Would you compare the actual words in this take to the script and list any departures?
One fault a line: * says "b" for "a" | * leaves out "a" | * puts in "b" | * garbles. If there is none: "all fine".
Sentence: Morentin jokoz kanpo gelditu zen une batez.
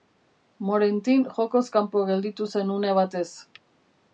all fine